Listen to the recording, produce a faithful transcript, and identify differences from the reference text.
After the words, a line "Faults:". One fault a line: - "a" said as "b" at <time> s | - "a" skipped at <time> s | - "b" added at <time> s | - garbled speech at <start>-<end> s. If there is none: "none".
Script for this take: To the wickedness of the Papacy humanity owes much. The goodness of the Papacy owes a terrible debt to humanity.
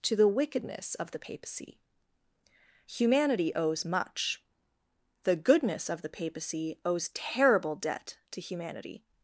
To the wickedness of the Papacy humanity owes much. The goodness of the Papacy owes terrible debt to humanity.
Faults:
- "a" skipped at 7.1 s